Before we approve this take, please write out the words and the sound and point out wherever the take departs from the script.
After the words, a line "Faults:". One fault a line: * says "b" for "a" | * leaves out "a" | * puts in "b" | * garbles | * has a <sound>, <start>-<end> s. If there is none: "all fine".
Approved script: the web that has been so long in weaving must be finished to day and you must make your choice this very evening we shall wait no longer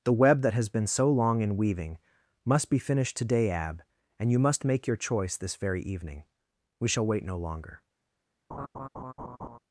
the web that has been so long in weaving must be finished today ab and you must make your choice this very evening we shall wait no longer
Faults:
* says "today ab" for "to day"
* has a laugh, 8.5-9.6 s